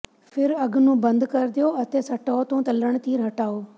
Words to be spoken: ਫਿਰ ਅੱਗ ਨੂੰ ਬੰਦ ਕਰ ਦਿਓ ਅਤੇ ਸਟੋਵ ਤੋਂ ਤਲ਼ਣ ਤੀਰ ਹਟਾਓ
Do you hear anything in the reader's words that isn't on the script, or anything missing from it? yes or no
no